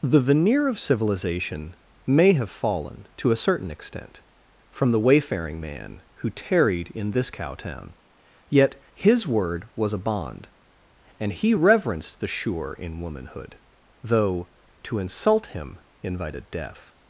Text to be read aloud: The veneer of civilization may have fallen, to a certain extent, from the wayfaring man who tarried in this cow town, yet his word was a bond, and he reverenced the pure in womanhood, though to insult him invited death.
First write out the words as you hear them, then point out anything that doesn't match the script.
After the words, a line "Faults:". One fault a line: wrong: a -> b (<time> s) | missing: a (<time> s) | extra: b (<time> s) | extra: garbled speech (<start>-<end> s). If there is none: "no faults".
The veneer of civilization may have fallen, to a certain extent, from the wayfaring man who tarried in this cow town, yet his word was a bond, and he reverenced the sure in womanhood, though to insult him invited death.
Faults:
wrong: pure -> sure (12.3 s)